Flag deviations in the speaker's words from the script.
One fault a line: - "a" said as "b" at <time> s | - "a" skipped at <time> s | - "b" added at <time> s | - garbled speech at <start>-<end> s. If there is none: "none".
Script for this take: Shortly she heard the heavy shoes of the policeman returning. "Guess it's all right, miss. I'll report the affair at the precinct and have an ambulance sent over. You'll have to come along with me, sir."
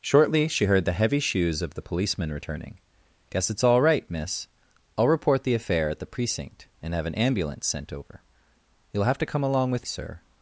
- "me" skipped at 9.8 s